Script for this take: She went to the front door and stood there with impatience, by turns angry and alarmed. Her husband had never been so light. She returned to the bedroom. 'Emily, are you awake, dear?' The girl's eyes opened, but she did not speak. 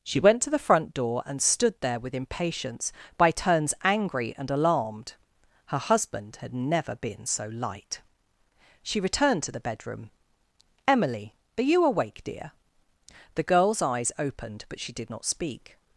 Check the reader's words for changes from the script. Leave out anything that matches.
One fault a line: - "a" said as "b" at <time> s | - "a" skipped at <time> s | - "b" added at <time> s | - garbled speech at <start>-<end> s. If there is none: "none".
none